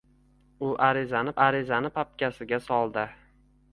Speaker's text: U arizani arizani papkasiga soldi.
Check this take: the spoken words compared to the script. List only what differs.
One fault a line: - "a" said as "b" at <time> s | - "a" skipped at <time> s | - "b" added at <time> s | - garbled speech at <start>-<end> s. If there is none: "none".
none